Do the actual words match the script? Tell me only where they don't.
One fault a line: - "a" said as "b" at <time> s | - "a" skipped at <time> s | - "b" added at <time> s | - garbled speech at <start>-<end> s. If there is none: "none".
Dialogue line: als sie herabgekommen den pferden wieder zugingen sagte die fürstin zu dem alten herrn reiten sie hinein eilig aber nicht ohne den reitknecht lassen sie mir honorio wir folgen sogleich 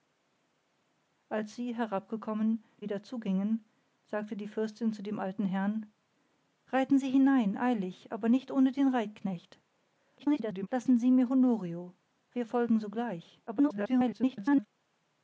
- "den pferden" skipped at 2.6 s
- garbled speech at 10.2-10.7 s
- garbled speech at 13.5-14.7 s